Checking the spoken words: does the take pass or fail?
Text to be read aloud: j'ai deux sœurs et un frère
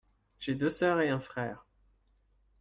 pass